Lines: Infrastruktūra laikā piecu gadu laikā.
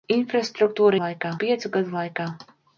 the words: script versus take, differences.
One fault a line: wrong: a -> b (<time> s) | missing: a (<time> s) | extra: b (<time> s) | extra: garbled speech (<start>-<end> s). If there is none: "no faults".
no faults